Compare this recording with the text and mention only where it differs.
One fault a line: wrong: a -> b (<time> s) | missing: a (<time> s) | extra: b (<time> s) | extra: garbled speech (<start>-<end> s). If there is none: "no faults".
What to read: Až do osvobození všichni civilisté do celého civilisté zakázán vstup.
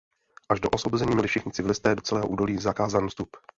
extra: měli (1.1 s)
wrong: civilisté -> údolí (2.3 s)